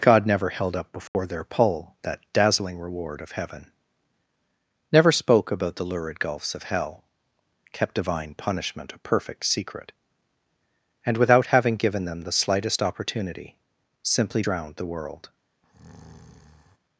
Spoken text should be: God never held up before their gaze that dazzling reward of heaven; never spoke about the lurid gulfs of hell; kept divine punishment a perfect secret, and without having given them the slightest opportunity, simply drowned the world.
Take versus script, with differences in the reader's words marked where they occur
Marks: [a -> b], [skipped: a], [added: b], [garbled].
God never held up before their [gaze -> pull] that dazzling reward of heaven; never spoke about the lurid gulfs of hell; kept divine punishment a perfect secret, and without having given them the slightest opportunity, simply drowned the world.